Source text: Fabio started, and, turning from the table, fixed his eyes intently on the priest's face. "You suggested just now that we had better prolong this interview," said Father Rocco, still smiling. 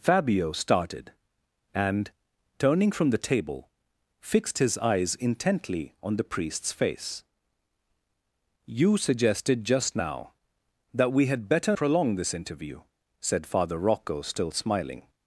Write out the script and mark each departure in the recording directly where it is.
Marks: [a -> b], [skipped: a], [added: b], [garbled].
Fabio started, and, turning from the table, fixed his eyes intently on the priest's face. "You suggested just now that we had better prolong this interview," said Father Rocco, still smiling.